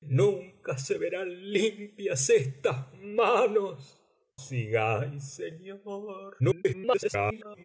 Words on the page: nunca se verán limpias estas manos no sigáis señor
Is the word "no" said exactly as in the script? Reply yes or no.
no